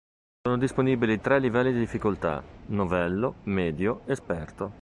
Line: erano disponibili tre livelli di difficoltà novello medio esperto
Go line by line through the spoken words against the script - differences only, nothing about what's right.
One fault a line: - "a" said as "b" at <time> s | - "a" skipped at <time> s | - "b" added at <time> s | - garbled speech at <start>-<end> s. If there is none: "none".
- "erano" said as "sono" at 0.4 s